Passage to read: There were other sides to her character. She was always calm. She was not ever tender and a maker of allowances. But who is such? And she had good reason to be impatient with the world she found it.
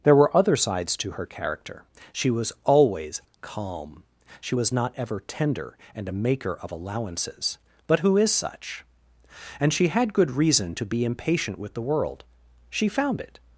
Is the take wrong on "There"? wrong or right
right